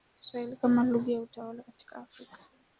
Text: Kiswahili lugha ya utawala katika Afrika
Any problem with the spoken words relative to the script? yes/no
yes